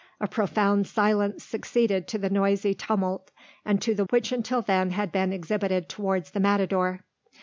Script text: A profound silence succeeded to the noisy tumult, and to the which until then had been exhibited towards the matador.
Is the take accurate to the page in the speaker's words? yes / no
yes